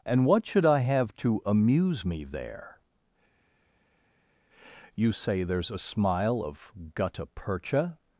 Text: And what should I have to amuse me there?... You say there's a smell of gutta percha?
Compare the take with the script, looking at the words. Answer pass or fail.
fail